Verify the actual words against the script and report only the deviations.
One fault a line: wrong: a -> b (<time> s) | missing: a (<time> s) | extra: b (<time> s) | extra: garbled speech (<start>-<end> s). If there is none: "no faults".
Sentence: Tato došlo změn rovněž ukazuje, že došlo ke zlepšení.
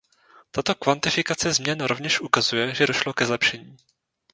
wrong: došlo -> kvantifikace (0.8 s)